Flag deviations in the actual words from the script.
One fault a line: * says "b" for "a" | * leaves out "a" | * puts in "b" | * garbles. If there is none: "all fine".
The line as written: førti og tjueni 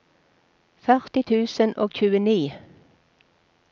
* puts in "tusen"